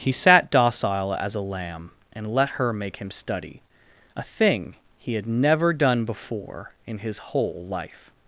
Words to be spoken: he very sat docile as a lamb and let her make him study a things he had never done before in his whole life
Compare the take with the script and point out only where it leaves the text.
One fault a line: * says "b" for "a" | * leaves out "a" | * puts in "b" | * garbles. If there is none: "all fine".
* leaves out "very"
* says "thing" for "things"